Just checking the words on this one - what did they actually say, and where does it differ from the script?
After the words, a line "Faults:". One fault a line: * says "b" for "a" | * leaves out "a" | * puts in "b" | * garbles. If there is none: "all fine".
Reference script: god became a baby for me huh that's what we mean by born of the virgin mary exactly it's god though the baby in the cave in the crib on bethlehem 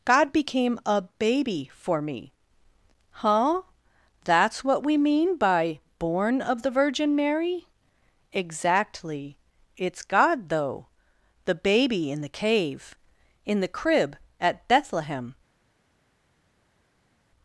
god became a baby for me huh that's what we mean by born of the virgin mary exactly it's god though the baby in the cave in the crib at bethlehem
Faults:
* says "at" for "on"